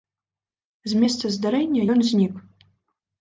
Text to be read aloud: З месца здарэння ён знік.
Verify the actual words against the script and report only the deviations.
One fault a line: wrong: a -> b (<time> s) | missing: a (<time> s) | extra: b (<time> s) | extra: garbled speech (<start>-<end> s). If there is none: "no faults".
no faults